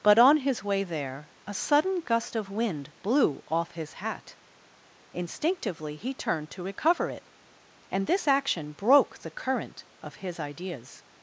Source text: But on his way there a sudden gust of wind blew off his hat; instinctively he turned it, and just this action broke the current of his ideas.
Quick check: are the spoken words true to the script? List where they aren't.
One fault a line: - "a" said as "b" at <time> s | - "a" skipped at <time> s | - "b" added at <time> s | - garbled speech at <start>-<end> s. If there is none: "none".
- "to recover" added at 6.5 s
- "just" skipped at 8.1 s